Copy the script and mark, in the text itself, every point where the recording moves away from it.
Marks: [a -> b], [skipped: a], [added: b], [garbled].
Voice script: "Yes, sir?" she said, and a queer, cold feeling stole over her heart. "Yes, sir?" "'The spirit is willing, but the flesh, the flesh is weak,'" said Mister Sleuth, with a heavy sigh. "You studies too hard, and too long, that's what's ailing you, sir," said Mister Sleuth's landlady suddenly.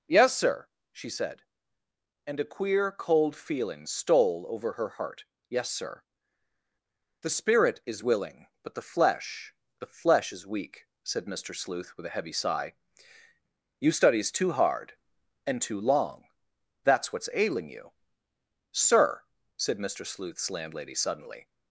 "Yes, sir?" she said, and a queer, cold feeling stole over her heart. "Yes, sir?" "'The spirit is willing, but the flesh, the flesh is weak,'" said Mister Sleuth, with a heavy sigh. "You studies too hard, and too long, that's what's ailing you, sir," said Mister Sleuth's landlady suddenly.